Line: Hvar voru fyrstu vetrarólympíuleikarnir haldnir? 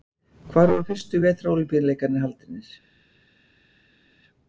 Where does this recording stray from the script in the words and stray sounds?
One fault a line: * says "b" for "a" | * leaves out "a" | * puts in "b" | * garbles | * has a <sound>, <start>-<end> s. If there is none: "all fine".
all fine